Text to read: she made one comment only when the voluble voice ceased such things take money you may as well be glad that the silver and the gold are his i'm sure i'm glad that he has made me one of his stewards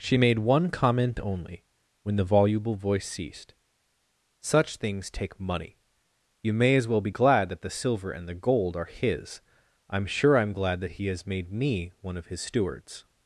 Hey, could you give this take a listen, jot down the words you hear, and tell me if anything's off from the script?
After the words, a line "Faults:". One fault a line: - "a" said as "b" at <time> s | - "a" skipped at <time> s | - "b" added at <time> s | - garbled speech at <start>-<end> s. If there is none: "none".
she made one comment only when the voluble voice ceased such things take money you may as well be glad that the silver and the gold are his i'm sure i'm glad that he has made me one of his stewards
Faults:
none